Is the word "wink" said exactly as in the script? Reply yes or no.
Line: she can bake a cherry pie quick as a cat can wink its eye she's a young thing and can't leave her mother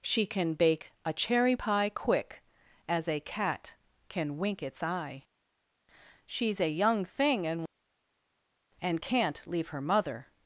yes